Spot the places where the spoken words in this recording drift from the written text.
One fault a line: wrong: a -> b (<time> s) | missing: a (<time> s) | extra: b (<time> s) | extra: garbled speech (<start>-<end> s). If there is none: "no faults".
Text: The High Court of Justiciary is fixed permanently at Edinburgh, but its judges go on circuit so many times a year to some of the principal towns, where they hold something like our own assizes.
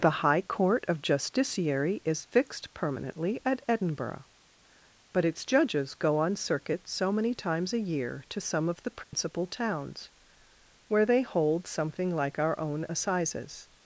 no faults